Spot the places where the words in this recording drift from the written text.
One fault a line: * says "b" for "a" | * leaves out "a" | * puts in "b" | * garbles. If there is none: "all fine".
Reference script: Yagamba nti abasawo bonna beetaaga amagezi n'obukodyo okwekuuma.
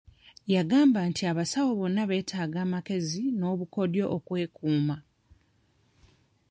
all fine